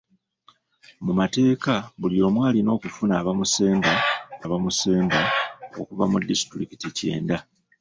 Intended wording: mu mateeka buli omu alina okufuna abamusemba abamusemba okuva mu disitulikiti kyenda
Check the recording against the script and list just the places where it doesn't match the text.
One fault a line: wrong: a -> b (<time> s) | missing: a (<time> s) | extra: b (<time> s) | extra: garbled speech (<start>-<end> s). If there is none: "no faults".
no faults